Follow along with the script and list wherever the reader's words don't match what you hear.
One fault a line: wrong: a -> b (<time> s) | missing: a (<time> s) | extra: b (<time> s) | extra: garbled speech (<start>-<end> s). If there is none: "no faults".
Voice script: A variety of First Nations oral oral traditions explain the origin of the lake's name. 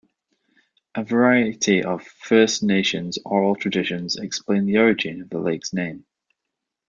missing: oral (3.5 s)